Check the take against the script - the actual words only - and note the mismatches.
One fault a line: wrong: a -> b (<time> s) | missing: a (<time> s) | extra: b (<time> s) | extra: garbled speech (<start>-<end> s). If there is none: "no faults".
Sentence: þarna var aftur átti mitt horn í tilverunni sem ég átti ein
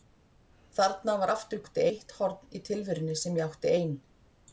no faults